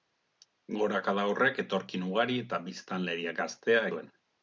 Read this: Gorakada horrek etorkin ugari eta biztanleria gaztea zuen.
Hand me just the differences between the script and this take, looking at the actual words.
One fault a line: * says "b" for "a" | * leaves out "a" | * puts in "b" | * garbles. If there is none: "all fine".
all fine